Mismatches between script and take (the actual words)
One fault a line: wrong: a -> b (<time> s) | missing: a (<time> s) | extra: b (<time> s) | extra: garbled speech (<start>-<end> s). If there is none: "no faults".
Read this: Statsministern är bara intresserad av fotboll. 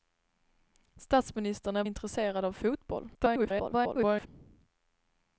missing: bara (1.8 s)
extra: garbled speech (3.1-4.3 s)